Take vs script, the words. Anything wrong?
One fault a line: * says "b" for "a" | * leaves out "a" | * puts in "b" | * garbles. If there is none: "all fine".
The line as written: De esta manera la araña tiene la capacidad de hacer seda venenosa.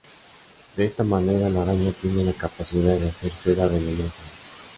all fine